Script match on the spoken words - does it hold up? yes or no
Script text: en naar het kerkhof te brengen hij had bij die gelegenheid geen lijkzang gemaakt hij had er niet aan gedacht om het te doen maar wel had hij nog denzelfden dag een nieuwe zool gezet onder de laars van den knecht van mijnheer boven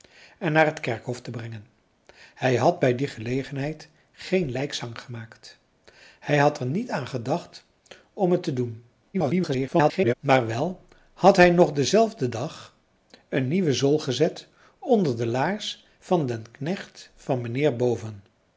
no